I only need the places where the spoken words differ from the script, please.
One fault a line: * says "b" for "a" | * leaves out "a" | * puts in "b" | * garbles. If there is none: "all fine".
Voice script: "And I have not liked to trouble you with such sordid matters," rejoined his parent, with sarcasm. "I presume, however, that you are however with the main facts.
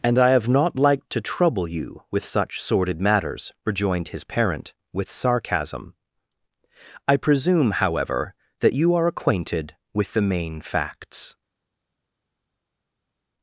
* says "acquainted" for "however"